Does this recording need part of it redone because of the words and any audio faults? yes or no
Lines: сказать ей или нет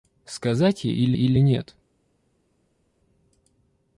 yes